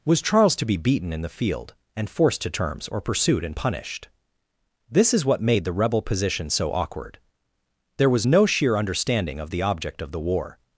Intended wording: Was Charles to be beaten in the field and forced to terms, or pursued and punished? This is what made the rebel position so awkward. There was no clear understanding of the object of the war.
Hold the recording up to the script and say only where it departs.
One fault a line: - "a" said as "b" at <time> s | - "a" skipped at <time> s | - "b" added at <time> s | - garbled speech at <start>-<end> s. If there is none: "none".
- "clear" said as "sheer" at 8.4 s